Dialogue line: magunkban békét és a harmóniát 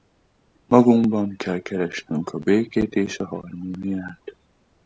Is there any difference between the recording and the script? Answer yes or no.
yes